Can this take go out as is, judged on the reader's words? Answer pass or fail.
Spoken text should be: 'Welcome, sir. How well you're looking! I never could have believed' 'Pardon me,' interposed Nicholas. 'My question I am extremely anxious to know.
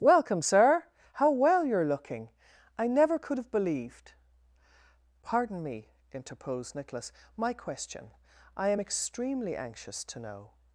pass